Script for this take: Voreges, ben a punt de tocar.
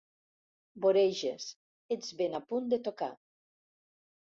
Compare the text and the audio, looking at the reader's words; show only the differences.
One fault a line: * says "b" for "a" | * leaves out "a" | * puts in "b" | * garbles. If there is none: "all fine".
* puts in "ets"